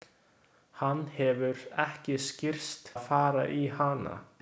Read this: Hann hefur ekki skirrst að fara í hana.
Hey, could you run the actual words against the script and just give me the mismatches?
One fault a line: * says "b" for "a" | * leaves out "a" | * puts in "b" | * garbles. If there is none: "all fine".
all fine